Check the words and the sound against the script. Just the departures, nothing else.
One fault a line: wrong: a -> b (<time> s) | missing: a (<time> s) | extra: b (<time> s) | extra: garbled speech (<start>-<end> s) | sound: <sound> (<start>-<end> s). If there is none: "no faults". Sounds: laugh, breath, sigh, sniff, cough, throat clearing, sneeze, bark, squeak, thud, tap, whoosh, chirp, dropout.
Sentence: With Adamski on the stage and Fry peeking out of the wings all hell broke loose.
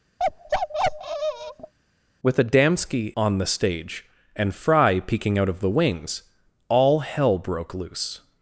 sound: bark (0.2-1.7 s)